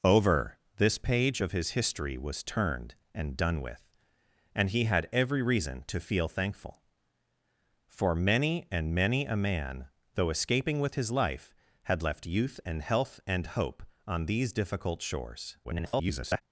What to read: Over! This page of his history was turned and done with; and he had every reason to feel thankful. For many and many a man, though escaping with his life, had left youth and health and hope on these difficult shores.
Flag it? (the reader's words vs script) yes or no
yes